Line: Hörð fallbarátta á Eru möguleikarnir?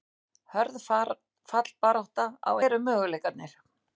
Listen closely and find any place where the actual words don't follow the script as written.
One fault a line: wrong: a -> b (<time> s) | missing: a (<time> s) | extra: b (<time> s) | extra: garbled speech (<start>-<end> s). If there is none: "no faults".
no faults